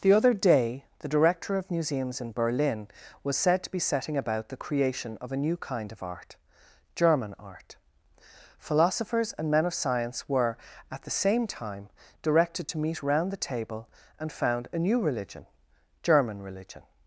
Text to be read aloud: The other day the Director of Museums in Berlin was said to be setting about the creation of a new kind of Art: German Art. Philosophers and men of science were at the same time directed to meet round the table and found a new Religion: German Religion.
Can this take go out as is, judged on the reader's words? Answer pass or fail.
pass